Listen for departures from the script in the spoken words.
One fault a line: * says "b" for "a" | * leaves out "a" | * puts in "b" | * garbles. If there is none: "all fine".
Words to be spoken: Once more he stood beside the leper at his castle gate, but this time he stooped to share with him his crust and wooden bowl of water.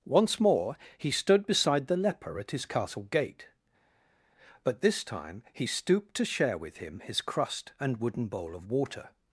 all fine